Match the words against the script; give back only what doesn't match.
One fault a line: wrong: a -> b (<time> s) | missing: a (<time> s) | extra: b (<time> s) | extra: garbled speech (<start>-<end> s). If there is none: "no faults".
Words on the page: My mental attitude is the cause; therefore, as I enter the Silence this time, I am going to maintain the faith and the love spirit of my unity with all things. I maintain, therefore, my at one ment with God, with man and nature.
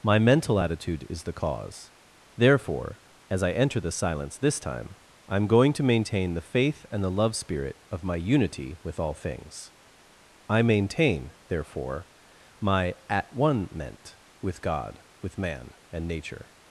no faults